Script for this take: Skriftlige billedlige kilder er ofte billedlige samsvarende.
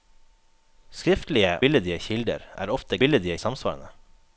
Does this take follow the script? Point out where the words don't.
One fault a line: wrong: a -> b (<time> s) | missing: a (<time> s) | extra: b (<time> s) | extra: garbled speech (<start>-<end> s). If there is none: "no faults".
no faults